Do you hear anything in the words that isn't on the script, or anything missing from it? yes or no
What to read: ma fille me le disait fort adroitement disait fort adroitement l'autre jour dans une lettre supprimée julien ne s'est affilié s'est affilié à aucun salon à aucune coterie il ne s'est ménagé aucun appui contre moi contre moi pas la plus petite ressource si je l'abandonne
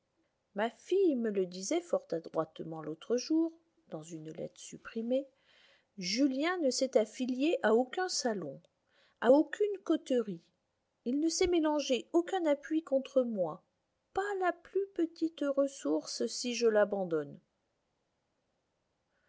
yes